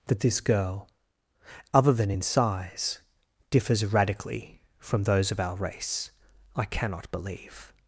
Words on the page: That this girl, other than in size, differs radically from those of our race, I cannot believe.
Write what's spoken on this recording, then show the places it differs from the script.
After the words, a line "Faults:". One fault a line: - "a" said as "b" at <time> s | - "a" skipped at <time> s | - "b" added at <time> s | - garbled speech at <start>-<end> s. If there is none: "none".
That this girl, other than in size, differs radically from those of our race, I cannot believe.
Faults:
none